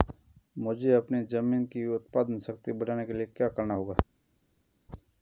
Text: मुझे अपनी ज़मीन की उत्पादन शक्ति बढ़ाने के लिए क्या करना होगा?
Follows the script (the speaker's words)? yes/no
yes